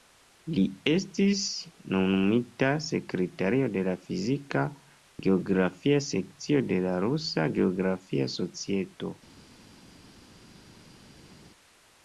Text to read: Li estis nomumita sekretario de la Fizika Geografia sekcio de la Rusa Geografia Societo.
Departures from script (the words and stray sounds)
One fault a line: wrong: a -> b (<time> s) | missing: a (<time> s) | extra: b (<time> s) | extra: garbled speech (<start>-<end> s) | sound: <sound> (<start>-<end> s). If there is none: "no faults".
no faults